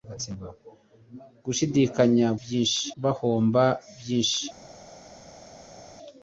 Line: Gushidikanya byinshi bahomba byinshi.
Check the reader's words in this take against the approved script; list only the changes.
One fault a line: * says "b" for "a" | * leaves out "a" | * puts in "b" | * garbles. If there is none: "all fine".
all fine